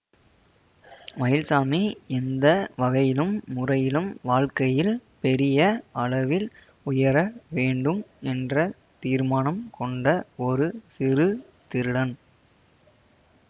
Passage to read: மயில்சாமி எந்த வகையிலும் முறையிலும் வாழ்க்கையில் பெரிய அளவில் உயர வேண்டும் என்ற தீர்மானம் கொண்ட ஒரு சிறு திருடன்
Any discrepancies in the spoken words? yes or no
no